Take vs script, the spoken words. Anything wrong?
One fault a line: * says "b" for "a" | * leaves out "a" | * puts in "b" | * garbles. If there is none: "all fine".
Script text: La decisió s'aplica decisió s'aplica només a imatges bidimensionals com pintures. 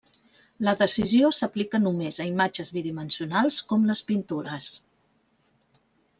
* leaves out "decisió s'aplica"
* puts in "les"